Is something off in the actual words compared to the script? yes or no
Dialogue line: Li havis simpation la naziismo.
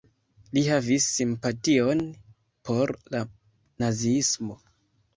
yes